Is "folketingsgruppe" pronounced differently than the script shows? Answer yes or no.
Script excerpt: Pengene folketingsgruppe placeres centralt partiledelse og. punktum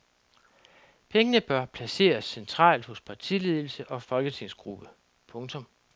yes